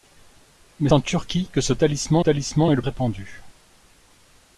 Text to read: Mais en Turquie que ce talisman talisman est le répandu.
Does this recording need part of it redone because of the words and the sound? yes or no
no